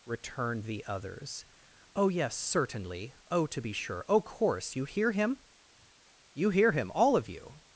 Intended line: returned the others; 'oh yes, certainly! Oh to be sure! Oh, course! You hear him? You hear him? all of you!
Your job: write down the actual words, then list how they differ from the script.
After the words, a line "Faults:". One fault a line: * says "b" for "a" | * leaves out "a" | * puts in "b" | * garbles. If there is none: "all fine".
returned the others; 'oh yes, certainly! Oh to be sure! Oh, course! You hear him? You hear him? all of you!
Faults:
all fine